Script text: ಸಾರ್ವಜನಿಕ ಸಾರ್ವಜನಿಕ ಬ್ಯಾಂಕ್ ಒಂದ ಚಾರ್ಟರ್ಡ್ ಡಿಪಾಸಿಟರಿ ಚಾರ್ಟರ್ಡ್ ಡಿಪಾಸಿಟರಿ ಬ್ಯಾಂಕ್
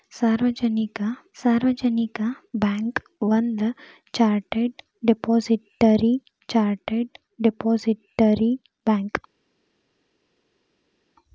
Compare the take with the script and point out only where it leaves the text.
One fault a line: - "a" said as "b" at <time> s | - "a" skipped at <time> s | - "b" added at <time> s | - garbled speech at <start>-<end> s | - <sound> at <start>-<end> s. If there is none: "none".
none